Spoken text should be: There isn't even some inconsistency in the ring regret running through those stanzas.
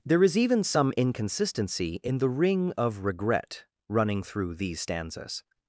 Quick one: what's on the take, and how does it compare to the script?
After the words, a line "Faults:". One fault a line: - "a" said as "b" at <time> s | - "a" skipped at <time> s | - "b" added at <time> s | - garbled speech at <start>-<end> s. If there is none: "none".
There is even some inconsistency in the ring of regret running through these stanzas.
Faults:
- "isn't" said as "is" at 0.2 s
- "of" added at 2.8 s
- "those" said as "these" at 4.5 s